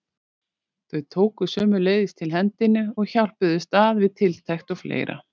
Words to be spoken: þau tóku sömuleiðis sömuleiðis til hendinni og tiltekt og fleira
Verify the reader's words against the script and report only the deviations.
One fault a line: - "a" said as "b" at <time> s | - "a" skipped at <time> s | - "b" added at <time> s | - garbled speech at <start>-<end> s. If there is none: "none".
- "sömuleiðis" skipped at 2.1 s
- "hjálpuðust að við" added at 3.1 s